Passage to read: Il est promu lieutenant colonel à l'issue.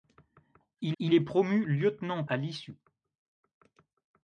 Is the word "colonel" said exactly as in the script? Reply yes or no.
no